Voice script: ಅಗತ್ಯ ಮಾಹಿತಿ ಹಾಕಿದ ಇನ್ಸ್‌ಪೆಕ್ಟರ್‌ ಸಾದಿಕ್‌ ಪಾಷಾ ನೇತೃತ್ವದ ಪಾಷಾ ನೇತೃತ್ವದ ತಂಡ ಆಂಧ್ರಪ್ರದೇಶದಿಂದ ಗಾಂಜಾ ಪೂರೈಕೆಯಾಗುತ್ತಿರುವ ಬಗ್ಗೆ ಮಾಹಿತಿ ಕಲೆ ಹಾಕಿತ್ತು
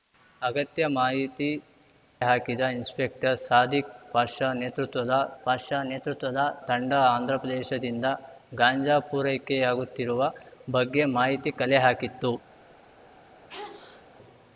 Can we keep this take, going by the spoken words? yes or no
yes